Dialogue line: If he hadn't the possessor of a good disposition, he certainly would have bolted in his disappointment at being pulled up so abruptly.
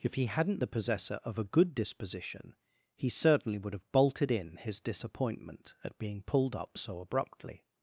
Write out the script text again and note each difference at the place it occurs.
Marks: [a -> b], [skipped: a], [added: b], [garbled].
If he hadn't the possessor of a good disposition, he certainly would have bolted in his disappointment at being pulled up so abruptly.